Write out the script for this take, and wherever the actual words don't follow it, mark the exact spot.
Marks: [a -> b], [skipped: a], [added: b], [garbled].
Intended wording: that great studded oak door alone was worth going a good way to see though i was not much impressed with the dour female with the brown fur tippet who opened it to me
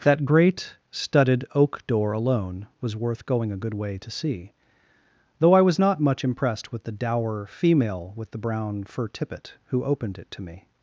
that great studded oak door alone was worth going a good way to see though i was not much impressed with the dour female with the brown fur tippet who opened it to me